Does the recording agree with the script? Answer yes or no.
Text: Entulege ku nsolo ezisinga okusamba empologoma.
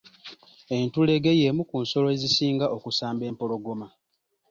no